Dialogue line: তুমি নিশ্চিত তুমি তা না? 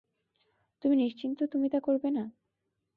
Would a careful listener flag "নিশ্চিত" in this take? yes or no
no